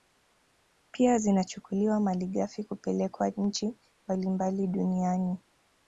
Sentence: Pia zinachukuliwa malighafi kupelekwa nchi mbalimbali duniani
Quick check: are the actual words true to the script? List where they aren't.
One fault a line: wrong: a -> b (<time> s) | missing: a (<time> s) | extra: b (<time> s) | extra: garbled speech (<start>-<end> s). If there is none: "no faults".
no faults